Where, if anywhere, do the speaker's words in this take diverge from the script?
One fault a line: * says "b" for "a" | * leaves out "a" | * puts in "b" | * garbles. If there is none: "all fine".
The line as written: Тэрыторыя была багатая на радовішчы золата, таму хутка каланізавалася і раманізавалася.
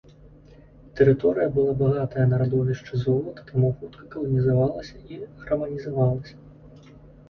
all fine